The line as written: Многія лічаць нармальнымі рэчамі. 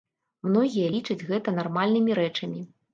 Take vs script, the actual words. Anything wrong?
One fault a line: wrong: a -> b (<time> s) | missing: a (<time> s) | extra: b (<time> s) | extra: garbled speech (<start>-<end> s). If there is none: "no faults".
extra: гэта (1.3 s)